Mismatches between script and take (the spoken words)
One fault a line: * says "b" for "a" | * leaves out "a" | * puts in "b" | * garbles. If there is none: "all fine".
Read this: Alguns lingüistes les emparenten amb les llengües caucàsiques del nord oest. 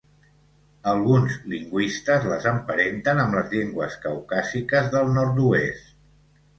all fine